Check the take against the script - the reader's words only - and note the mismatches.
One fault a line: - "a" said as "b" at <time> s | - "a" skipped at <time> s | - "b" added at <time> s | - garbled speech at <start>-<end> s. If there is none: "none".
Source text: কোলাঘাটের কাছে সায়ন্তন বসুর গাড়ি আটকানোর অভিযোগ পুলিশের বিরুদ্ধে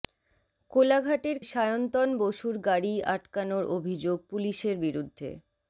- "কাছে" skipped at 1.4 s